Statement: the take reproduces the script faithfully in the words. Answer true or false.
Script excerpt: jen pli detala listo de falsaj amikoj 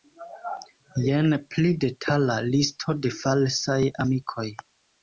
true